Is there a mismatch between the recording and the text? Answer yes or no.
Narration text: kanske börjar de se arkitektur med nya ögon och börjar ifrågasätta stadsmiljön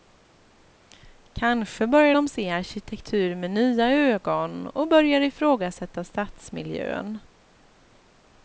no